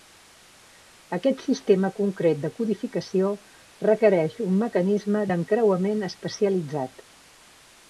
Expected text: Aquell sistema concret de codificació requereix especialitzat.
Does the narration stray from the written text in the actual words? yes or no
yes